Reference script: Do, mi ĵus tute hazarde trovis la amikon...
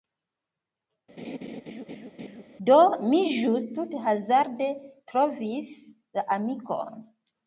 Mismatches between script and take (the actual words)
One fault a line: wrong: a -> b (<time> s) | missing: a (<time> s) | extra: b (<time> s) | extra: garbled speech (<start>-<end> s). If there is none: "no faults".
no faults